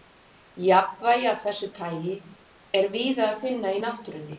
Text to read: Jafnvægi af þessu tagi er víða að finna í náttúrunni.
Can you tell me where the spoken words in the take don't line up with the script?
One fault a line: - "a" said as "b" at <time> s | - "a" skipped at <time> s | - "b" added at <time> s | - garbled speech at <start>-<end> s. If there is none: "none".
none